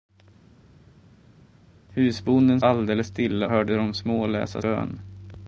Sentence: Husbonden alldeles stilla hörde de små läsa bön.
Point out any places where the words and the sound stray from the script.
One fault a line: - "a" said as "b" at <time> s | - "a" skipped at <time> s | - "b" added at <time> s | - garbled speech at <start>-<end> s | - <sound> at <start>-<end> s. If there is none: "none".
none